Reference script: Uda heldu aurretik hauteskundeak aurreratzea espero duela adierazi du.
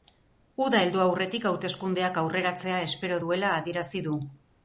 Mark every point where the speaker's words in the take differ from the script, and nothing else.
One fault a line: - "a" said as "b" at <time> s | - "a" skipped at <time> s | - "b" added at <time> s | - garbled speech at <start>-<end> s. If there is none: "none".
none